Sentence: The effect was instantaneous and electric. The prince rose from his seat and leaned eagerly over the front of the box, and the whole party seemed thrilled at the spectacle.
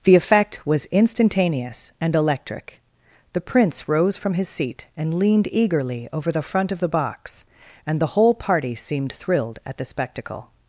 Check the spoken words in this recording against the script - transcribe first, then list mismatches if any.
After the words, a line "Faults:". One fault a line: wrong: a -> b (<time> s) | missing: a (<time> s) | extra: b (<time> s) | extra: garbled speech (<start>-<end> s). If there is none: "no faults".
The effect was instantaneous and electric. The prince rose from his seat and leaned eagerly over the front of the box, and the whole party seemed thrilled at the spectacle.
Faults:
no faults